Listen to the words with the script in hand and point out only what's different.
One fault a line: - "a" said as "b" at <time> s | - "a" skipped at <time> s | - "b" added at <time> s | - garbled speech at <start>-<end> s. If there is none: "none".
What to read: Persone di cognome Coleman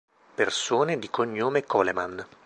none